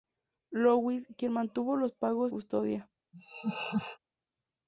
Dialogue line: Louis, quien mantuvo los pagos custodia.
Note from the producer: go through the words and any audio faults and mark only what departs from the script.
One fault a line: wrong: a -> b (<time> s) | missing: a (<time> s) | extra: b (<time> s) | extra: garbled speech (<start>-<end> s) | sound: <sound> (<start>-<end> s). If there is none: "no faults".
sound: laugh (3.1-4.0 s)